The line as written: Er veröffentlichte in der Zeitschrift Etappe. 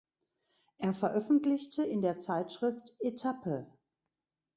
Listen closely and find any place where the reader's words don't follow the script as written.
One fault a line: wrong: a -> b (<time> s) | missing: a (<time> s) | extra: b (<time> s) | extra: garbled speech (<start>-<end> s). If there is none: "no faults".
no faults